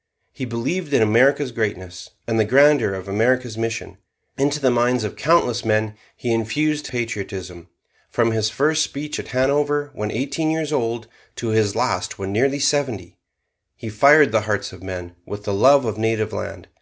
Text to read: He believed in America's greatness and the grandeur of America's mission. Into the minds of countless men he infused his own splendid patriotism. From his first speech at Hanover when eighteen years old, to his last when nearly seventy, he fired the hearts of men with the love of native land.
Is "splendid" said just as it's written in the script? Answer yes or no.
no